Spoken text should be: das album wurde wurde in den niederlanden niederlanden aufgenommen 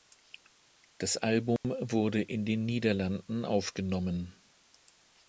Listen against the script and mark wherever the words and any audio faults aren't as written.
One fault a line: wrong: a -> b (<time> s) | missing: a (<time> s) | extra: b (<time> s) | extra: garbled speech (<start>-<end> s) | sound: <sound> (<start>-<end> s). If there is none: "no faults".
sound: dropout (1.6-1.6 s)
missing: wurde (2.2 s)
missing: niederlanden (3.5 s)